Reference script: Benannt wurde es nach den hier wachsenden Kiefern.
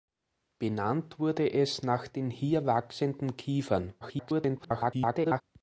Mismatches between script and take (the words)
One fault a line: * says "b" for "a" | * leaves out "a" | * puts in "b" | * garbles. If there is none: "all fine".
* garbles